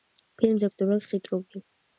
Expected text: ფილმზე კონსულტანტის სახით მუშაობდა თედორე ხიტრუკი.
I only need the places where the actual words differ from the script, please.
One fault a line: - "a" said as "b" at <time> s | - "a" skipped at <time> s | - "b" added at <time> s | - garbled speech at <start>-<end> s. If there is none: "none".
- "კონსულტანტის სახით მუშაობდა" skipped at 0.7 s